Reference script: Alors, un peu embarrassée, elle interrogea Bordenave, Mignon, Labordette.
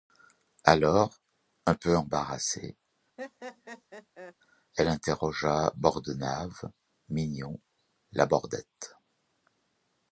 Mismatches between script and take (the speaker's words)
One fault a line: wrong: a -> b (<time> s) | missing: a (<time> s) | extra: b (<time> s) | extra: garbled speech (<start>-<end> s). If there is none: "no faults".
no faults